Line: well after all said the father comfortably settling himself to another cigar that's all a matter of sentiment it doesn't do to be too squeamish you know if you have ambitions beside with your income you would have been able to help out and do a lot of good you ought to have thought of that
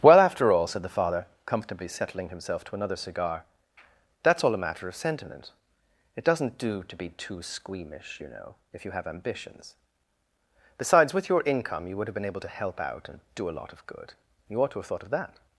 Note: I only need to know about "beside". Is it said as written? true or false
false